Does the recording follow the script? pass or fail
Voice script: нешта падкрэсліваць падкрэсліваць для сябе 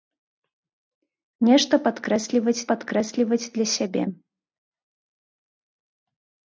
pass